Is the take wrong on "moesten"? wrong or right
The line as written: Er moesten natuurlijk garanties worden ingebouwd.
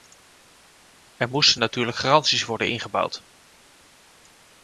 right